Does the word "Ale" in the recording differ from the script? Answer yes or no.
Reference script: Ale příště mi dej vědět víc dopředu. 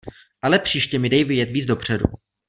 no